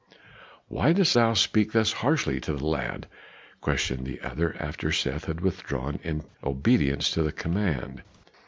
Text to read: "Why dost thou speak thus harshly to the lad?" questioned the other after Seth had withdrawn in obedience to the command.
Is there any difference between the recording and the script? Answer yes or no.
no